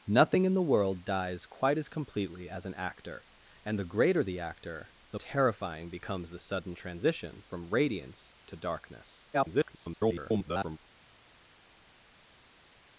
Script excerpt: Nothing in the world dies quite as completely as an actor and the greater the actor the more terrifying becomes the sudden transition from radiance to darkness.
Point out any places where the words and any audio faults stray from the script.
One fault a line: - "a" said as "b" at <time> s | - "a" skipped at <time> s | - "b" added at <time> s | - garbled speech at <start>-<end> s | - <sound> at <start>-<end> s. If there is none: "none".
- "more" skipped at 5.2 s
- garbled speech at 9.3-10.8 s